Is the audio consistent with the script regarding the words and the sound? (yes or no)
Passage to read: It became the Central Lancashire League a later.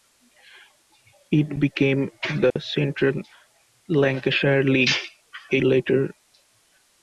no